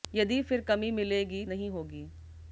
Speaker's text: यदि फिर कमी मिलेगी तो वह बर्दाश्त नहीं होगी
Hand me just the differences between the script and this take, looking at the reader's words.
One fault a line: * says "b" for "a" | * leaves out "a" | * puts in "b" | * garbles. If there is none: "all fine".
* leaves out "तो वह बर्दाश्त"